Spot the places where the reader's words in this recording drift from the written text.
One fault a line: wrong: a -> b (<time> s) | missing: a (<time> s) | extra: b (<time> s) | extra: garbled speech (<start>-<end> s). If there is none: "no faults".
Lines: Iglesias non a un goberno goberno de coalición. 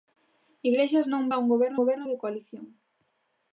no faults